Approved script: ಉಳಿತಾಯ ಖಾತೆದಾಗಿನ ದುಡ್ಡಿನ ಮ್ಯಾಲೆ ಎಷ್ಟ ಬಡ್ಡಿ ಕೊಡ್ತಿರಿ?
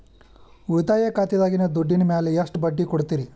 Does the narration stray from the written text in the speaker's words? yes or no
no